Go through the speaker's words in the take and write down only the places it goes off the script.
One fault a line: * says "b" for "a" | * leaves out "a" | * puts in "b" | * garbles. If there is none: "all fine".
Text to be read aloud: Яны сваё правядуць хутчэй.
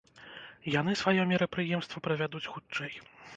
* puts in "мерапрыемства"